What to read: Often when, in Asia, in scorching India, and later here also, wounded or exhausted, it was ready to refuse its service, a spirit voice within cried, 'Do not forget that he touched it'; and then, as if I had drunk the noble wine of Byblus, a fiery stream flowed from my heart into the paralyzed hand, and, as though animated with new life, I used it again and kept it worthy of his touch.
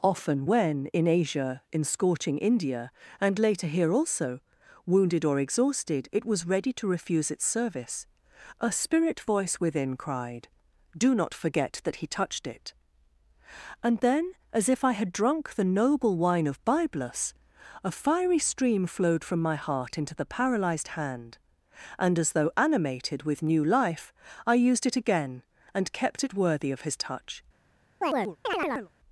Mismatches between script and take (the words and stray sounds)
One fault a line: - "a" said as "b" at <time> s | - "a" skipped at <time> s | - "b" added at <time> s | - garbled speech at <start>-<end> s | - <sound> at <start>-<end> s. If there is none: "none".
- chirp at 28.0-28.9 s